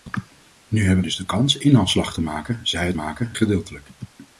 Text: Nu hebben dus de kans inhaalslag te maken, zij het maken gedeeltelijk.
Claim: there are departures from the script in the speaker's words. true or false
false